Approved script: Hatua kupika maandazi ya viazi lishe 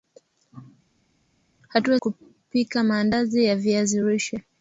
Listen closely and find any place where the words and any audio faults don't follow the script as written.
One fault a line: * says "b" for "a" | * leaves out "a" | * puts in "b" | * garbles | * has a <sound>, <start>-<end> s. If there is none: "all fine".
all fine